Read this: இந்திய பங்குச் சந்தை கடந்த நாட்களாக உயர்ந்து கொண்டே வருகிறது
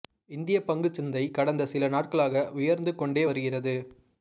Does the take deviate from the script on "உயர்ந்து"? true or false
false